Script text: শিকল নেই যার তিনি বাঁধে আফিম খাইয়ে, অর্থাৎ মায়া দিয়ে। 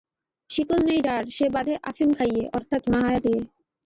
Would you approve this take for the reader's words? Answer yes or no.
no